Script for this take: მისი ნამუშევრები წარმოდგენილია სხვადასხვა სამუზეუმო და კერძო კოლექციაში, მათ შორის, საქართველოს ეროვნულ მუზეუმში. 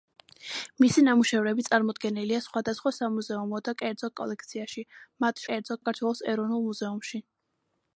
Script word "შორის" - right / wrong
wrong